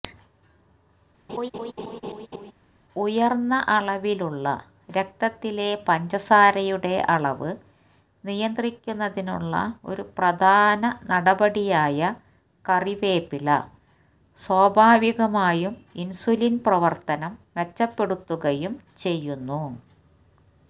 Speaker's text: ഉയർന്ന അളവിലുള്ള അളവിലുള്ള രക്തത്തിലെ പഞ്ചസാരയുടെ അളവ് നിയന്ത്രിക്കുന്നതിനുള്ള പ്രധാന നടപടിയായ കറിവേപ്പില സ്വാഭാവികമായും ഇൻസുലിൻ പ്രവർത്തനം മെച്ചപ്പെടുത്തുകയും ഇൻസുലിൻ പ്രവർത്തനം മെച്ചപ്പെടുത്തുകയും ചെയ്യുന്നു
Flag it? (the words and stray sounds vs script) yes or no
yes